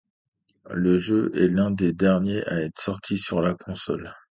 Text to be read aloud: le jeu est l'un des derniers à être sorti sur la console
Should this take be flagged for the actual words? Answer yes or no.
no